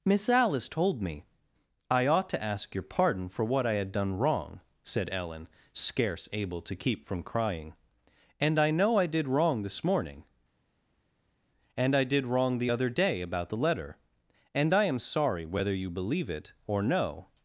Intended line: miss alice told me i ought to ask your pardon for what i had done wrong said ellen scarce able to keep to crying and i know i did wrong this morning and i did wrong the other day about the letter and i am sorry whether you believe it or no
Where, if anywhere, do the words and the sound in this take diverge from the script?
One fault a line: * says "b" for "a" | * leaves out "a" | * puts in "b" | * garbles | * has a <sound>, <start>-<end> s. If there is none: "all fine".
* says "from" for "to"